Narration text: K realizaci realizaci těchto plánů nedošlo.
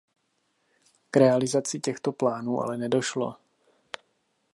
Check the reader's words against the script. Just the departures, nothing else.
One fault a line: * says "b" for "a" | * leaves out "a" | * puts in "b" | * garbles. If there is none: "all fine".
* leaves out "realizaci"
* puts in "ale"